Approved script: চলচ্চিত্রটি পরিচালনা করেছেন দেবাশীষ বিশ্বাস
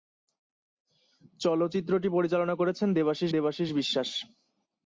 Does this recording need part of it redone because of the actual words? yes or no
yes